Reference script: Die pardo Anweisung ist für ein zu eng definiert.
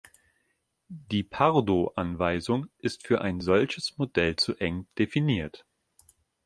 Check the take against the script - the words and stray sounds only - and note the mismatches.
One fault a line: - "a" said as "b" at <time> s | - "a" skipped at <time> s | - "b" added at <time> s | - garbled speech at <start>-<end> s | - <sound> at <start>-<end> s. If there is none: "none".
- "solches Modell" added at 3.4 s